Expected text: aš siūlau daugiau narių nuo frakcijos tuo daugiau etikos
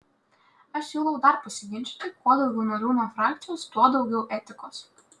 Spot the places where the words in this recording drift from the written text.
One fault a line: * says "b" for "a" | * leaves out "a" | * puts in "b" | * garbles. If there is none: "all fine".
* puts in "dar pasiginčyti kuo"